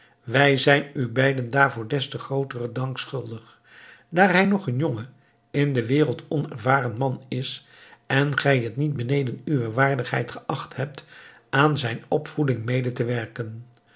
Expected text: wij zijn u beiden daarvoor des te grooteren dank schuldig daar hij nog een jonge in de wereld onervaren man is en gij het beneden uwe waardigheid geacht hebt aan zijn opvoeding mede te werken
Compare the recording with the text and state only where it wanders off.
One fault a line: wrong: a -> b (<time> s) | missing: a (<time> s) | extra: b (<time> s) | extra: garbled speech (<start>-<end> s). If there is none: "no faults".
extra: niet (8.8 s)